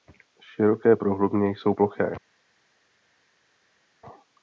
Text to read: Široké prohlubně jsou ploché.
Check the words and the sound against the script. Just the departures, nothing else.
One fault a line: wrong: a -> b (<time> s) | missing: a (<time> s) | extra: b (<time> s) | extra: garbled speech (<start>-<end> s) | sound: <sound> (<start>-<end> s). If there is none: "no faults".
no faults